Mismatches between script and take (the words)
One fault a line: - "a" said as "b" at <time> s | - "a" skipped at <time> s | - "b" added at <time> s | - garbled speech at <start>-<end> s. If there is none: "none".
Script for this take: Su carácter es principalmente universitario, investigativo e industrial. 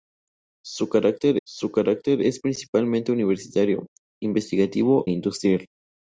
- "su carácter" added at 1.5 s
- "e" skipped at 5.1 s